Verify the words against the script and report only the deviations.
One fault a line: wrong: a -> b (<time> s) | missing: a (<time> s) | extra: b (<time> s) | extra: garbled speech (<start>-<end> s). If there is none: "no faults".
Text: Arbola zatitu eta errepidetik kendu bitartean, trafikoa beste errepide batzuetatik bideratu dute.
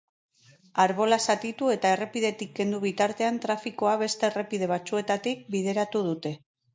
no faults